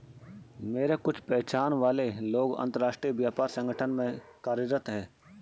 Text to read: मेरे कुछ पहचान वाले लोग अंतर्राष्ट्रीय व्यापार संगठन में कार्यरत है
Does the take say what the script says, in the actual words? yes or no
yes